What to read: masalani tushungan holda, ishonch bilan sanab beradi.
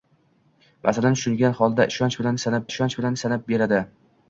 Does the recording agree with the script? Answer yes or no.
no